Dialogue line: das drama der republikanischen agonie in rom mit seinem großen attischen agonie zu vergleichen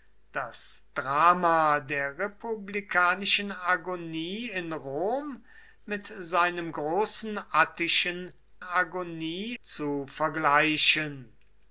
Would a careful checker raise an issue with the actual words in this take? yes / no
no